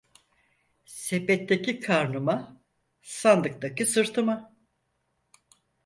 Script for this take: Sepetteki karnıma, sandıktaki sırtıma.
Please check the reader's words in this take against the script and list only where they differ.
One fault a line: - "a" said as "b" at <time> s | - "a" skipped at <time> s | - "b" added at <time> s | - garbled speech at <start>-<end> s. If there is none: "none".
none